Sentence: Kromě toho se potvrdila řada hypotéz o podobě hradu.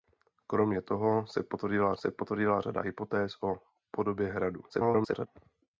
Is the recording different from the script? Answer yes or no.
yes